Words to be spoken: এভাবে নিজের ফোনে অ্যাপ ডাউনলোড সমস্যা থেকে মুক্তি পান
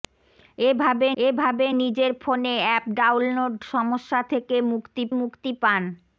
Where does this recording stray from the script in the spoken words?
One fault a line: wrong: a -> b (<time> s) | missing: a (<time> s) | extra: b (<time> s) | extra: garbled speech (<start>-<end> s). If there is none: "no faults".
extra: এভাবে (1.2 s)
extra: মুক্তি (5.2 s)